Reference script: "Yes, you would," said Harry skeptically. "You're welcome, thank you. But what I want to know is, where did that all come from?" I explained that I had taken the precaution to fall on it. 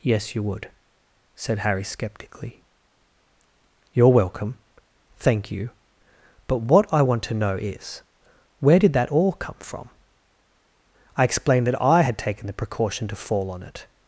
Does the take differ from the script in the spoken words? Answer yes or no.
no